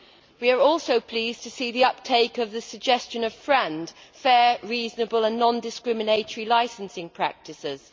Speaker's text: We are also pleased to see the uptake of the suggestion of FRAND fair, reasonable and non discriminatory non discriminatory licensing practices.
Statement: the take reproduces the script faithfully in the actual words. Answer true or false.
false